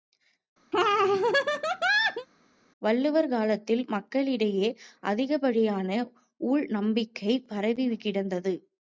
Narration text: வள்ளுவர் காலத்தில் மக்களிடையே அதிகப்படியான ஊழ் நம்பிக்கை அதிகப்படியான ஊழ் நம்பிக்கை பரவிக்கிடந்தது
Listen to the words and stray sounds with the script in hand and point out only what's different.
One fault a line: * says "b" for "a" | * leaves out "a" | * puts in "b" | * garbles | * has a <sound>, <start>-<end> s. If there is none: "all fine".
* has a laugh, 0.7-2.3 s
* leaves out "அதிகப்படியான ஊழ் நம்பிக்கை"